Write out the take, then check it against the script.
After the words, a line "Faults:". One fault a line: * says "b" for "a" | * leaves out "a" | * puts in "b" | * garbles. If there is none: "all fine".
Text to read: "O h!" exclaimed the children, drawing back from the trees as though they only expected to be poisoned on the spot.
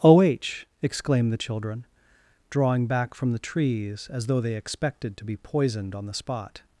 "O h!" exclaimed the children, drawing back from the trees as though they expected to be poisoned on the spot.
Faults:
* leaves out "only"